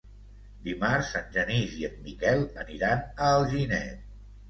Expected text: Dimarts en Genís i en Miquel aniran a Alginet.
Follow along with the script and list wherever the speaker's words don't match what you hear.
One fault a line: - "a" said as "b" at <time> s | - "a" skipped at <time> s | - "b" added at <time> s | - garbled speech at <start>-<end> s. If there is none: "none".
none